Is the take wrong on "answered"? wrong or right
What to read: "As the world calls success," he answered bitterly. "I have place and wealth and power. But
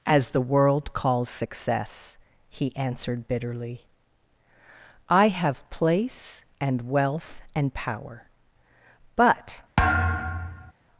right